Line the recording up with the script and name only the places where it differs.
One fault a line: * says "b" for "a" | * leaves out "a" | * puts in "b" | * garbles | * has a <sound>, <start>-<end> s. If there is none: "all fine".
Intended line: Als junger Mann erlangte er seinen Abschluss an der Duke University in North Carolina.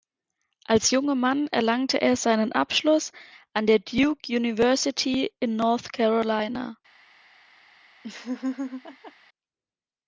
* has a laugh, 8.0-9.1 s